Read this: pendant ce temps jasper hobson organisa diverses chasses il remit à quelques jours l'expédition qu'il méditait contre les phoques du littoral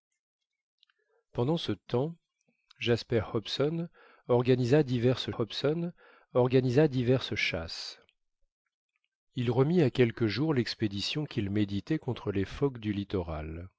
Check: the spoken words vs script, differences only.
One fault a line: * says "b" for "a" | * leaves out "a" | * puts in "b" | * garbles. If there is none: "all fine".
* puts in "hobson organisa diverses"